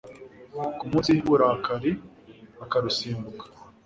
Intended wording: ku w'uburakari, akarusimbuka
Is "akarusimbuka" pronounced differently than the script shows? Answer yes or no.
no